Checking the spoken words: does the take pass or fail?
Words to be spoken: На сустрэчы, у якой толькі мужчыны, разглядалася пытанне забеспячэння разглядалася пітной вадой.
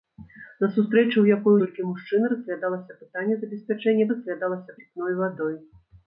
pass